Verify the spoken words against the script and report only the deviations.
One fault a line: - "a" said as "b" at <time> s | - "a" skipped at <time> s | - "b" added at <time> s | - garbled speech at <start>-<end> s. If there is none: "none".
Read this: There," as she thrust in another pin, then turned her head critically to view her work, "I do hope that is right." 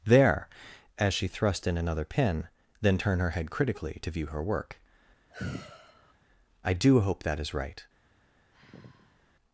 - "turned" said as "turn" at 2.9 s